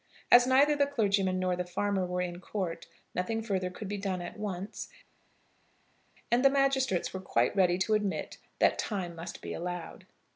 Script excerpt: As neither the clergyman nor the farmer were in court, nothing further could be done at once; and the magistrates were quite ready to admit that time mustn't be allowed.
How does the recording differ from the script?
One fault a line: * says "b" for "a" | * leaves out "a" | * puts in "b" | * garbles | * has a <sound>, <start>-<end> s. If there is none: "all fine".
* says "must" for "mustn't"